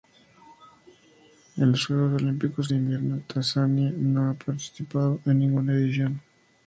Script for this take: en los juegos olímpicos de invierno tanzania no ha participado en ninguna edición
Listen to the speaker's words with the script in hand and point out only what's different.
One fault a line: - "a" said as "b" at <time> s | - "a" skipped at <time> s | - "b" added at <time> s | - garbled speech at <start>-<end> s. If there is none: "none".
none